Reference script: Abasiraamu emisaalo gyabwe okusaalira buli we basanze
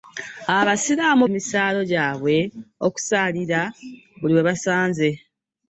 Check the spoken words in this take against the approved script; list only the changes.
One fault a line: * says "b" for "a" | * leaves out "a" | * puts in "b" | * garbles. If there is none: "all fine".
all fine